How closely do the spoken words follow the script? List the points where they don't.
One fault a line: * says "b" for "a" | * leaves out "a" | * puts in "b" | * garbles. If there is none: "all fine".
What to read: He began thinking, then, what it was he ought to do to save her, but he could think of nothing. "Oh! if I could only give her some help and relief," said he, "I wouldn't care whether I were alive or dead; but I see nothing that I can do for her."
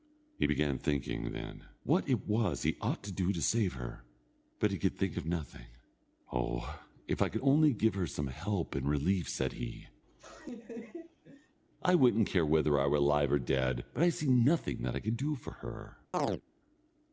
all fine